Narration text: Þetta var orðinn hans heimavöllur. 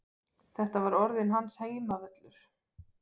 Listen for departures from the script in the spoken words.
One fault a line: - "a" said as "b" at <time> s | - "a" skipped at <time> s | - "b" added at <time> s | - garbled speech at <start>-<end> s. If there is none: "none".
none